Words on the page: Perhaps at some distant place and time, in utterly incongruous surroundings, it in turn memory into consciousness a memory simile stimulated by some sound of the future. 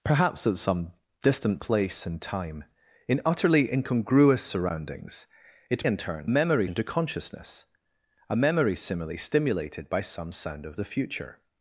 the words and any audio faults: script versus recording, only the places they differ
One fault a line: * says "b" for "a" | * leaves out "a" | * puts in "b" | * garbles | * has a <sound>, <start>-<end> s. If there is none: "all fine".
all fine